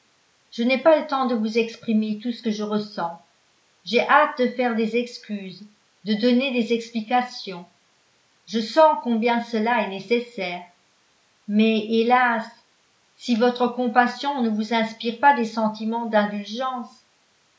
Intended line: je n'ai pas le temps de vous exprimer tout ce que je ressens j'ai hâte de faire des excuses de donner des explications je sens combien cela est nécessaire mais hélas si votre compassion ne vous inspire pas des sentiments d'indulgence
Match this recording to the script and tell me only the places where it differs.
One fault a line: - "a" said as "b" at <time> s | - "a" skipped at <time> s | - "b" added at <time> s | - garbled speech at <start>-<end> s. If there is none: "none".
none